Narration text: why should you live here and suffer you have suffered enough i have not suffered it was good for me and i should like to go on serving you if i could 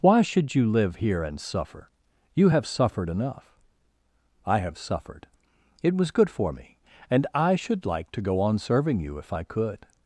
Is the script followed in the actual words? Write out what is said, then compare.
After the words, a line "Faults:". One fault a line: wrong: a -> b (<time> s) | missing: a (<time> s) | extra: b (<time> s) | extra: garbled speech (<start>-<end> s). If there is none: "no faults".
why should you live here and suffer you have suffered enough i have suffered it was good for me and i should like to go on serving you if i could
Faults:
missing: not (4.8 s)